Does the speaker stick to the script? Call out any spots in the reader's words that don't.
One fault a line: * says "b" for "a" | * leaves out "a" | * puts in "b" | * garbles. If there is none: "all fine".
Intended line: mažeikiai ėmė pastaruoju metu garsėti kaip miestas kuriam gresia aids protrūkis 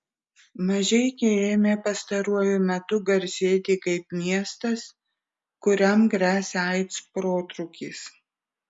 all fine